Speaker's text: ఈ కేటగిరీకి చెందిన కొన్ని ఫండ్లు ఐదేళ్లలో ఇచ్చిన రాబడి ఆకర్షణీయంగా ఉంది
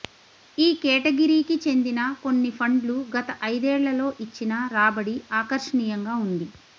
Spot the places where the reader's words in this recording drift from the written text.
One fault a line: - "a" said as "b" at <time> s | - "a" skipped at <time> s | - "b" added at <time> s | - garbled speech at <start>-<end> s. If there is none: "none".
- "గత" added at 3.1 s